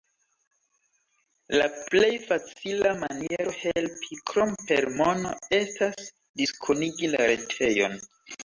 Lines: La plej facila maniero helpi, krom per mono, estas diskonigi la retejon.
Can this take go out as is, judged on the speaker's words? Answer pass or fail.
pass